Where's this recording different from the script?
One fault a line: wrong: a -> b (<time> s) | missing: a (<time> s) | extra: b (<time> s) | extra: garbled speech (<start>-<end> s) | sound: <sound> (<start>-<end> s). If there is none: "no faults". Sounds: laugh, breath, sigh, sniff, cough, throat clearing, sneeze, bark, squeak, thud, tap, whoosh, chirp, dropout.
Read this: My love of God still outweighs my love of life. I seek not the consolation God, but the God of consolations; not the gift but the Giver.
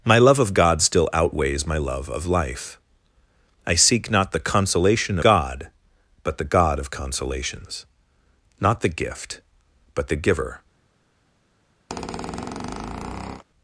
sound: squeak (11.9-13.4 s)